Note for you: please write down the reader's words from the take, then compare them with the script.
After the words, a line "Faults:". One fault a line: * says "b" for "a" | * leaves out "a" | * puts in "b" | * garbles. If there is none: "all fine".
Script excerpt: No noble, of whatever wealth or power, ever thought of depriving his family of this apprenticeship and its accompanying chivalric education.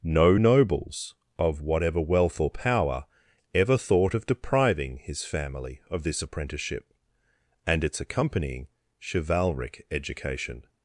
No nobles, of whatever wealth or power, ever thought of depriving his family of this apprenticeship and its accompanying chivalric education.
Faults:
* says "nobles" for "noble"